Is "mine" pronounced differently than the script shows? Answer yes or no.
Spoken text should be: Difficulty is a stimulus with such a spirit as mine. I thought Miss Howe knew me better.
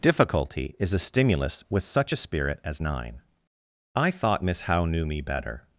yes